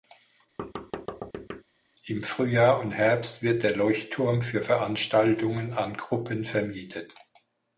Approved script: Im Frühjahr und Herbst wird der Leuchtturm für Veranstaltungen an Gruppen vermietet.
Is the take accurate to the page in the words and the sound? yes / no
no